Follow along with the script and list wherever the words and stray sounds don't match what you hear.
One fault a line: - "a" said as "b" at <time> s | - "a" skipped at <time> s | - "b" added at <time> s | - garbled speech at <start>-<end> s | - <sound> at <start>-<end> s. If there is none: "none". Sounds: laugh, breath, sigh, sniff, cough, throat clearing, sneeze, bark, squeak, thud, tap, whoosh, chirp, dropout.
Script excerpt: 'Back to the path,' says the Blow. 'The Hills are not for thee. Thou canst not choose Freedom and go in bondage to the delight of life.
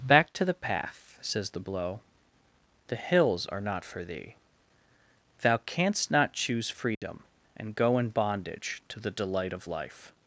- dropout at 6.9-7.0 s